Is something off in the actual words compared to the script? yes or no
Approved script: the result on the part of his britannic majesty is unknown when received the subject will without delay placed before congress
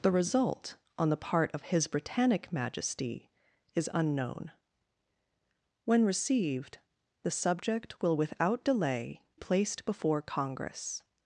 no